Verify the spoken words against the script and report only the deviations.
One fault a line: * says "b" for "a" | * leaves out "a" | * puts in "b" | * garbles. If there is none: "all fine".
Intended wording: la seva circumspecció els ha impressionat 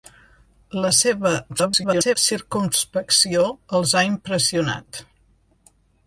* garbles